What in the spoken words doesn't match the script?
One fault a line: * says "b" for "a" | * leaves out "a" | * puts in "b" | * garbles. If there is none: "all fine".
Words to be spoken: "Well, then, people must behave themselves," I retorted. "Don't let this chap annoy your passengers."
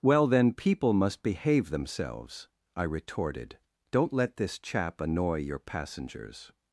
all fine